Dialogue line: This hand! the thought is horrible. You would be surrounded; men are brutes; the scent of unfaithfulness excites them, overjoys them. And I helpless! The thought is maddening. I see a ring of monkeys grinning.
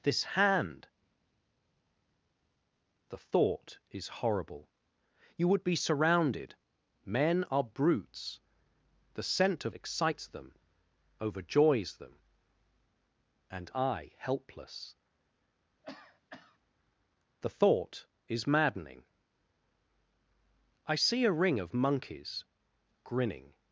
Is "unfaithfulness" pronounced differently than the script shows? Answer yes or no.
yes